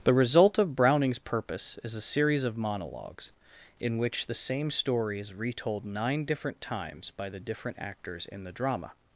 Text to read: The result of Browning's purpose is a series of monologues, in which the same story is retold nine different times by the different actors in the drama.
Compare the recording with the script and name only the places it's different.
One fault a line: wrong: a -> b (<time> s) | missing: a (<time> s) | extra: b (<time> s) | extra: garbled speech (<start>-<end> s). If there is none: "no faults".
no faults